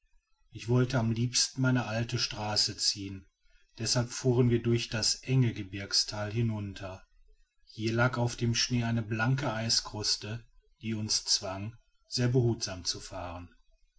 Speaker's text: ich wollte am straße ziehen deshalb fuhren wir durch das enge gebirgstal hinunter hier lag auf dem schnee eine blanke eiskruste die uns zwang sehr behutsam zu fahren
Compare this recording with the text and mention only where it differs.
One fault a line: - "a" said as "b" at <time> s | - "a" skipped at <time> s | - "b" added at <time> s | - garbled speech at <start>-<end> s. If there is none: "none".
- "liebsten meine alte" added at 1.1 s